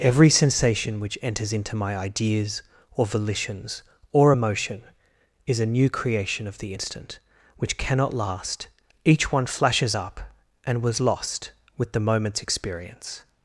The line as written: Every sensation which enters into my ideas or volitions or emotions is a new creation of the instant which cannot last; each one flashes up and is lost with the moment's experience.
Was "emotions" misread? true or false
true